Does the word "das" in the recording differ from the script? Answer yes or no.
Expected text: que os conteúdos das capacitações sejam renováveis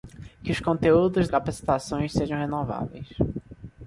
yes